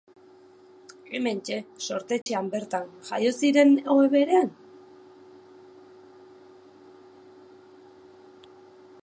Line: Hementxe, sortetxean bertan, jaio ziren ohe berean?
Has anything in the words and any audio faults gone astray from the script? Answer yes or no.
yes